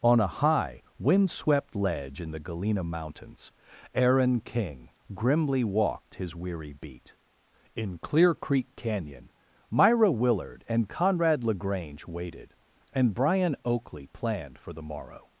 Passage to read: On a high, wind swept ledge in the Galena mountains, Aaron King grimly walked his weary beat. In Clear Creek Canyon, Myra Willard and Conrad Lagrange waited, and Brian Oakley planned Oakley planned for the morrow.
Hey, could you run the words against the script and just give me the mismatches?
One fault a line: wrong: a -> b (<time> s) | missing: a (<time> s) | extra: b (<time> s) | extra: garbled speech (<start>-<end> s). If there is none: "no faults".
missing: Oakley planned (14.6 s)